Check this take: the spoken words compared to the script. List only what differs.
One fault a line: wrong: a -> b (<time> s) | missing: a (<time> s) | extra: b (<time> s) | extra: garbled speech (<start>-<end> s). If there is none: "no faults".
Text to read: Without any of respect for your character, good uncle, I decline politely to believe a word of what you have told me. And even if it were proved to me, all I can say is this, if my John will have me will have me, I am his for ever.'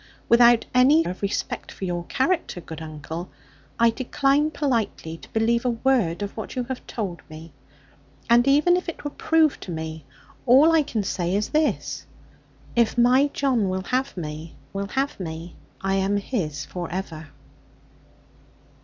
no faults